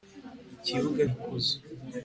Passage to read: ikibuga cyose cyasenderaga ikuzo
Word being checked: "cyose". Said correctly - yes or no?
no